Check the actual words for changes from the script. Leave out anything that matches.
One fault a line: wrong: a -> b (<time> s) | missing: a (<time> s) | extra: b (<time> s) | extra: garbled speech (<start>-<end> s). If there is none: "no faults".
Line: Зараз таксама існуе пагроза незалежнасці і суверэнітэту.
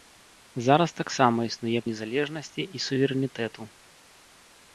missing: пагроза (1.8 s)